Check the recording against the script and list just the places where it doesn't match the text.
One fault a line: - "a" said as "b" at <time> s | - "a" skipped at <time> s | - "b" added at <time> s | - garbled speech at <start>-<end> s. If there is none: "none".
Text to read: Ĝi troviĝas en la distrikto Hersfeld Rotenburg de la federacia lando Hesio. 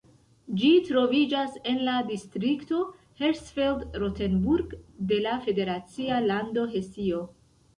none